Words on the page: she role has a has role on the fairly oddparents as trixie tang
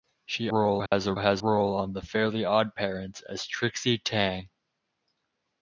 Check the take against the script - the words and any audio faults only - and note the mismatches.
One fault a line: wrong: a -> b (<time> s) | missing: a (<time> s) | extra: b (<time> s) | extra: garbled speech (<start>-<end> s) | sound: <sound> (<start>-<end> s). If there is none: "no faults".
sound: dropout (0.9-0.9 s)